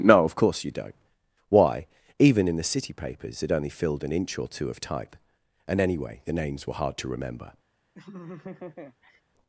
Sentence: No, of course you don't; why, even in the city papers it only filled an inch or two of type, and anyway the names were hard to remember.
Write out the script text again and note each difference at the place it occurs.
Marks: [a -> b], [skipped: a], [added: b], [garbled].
No, of course you don't; why, even in the city papers it only filled an inch or two of type, and anyway the names were hard to remember.